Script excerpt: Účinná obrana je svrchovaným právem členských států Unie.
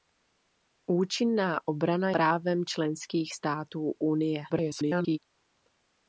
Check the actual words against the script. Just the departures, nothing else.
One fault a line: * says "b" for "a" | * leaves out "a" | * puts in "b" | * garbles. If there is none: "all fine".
* leaves out "je svrchovaným"
* garbles